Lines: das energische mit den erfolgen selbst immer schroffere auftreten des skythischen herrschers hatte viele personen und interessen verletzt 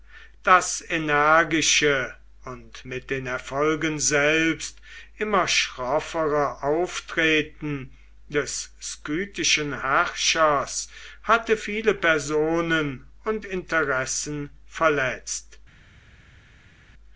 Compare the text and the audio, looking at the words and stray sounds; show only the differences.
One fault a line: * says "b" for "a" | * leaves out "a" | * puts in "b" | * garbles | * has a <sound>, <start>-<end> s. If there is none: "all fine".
* puts in "und"